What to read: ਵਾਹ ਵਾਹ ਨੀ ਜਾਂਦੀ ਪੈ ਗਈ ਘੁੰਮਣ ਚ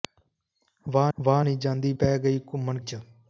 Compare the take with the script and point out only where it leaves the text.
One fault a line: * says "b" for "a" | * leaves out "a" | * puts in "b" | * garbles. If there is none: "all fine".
all fine